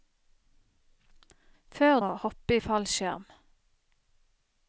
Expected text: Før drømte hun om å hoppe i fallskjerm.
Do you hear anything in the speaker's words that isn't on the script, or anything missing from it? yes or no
yes